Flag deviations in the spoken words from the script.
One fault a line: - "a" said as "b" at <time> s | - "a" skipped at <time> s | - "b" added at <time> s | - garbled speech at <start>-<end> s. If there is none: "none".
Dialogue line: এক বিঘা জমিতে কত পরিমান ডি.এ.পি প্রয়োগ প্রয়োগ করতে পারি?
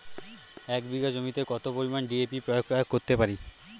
none